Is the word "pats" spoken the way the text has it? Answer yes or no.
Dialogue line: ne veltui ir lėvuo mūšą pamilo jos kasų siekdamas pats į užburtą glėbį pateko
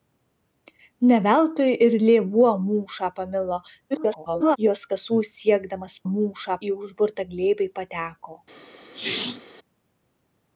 no